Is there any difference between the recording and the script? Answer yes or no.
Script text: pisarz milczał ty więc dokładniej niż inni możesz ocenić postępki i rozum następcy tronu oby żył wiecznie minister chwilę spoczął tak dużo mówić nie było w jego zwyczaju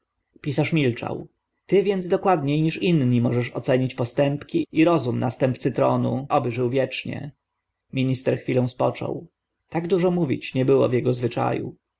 no